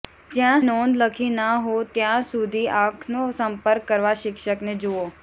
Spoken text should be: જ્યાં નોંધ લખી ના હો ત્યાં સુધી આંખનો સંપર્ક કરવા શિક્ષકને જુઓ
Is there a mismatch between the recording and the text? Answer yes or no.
no